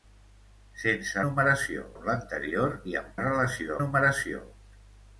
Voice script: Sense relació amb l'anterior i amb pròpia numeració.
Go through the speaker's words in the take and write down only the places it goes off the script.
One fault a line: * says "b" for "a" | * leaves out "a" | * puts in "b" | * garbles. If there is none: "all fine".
* says "numeració" for "relació"
* says "relació" for "pròpia"